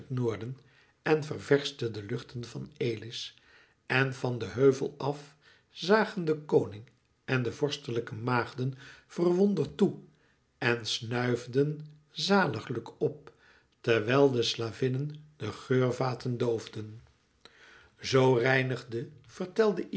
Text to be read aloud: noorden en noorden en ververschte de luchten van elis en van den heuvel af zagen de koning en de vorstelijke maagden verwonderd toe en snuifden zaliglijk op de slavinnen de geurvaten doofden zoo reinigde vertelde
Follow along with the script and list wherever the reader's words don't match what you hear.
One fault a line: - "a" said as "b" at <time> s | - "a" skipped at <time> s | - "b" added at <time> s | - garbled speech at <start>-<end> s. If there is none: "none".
- "noorden en" skipped at 1.2 s
- "terwijl" added at 13.8 s